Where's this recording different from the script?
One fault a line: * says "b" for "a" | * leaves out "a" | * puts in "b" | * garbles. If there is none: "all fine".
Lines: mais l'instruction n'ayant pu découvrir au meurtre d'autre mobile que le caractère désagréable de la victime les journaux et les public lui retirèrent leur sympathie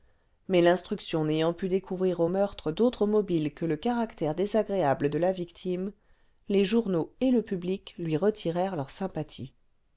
* says "le" for "les"